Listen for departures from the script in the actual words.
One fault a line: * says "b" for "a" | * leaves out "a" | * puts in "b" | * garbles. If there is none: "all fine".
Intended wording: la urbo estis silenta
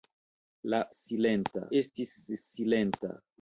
* says "silenta" for "urbo"